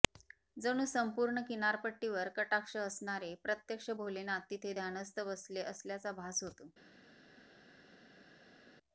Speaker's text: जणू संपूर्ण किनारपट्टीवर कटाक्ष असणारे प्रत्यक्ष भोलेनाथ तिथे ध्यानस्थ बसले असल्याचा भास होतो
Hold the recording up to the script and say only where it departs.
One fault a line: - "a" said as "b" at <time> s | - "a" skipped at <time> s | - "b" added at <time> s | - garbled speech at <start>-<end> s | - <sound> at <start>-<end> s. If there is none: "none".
none